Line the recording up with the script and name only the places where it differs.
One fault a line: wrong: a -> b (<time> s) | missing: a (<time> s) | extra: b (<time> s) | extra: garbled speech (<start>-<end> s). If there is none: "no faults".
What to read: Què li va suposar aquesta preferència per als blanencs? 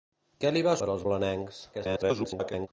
missing: suposar aquesta preferència (0.7 s)
extra: garbled speech (1.7-2.7 s)